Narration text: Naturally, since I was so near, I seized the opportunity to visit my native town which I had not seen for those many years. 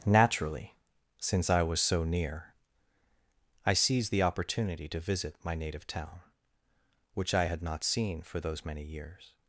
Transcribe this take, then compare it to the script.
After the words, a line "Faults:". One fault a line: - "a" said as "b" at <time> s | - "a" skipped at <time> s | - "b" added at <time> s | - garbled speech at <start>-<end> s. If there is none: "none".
Naturally, since I was so near, I seized the opportunity to visit my native town which I had not seen for those many years.
Faults:
none